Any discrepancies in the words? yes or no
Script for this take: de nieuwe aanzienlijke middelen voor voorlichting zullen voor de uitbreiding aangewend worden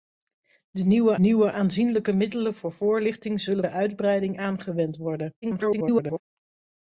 yes